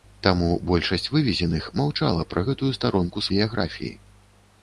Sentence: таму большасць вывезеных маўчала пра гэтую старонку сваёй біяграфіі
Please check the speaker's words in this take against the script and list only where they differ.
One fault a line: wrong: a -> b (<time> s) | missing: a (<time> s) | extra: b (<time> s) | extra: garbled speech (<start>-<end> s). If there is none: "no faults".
missing: сваёй (3.3 s)